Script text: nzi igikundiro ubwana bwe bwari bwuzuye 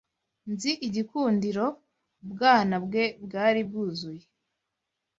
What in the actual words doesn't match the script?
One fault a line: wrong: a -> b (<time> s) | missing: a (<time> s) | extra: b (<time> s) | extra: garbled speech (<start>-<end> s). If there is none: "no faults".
no faults